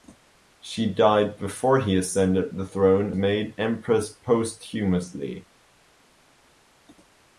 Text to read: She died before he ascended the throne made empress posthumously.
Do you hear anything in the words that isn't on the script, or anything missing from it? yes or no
no